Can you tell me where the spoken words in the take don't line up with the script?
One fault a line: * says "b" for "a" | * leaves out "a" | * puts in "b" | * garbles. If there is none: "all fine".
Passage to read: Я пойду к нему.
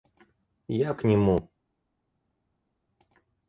* leaves out "пойду"